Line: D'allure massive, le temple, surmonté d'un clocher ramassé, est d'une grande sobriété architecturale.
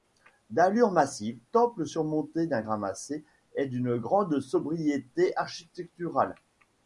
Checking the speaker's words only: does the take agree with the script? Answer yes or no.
no